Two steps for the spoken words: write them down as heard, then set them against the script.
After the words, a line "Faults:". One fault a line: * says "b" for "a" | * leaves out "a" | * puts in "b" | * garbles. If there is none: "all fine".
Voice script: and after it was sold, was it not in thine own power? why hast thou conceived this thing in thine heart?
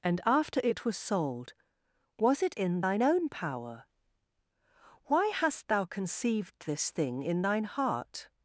and after it was sold, was it in thine own power? why hast thou conceived this thing in thine heart?
Faults:
* leaves out "not"